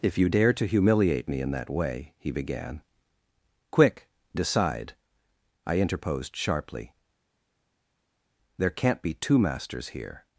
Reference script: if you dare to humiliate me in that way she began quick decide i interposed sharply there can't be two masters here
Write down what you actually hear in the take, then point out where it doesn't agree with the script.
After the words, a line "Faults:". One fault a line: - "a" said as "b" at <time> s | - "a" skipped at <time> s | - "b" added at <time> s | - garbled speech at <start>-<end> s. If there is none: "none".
if you dare to humiliate me in that way he began quick decide i interposed sharply there can't be two masters here
Faults:
- "she" said as "he" at 2.2 s